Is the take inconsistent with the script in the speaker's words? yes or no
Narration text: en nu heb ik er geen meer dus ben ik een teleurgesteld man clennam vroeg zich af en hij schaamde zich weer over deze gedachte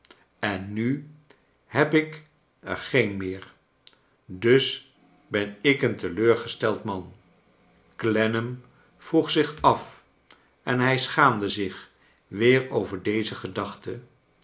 no